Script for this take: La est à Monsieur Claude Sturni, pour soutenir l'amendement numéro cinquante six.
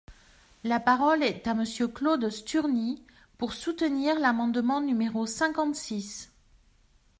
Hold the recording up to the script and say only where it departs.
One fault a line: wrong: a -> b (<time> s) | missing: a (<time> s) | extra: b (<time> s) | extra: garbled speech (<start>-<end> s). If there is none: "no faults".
extra: parole (0.8 s)